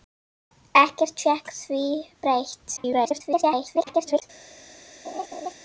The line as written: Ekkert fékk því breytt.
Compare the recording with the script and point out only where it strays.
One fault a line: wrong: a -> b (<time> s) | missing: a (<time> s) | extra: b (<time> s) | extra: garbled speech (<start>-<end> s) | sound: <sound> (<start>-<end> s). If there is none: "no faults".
extra: garbled speech (2.8-4.2 s)
sound: laugh (5.0-5.5 s)